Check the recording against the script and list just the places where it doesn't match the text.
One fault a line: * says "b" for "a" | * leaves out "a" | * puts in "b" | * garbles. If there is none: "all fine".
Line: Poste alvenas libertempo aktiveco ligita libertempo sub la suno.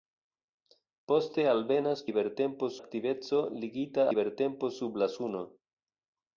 all fine